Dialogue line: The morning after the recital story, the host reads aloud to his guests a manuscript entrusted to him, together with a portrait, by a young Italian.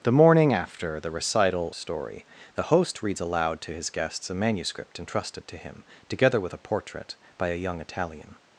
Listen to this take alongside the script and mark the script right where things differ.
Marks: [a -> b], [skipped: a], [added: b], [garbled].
The morning after the recital story, the host reads aloud to his guests a manuscript entrusted to him, together with a portrait, by a young Italian.